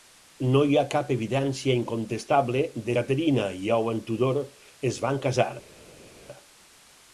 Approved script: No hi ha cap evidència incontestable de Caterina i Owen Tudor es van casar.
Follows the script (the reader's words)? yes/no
yes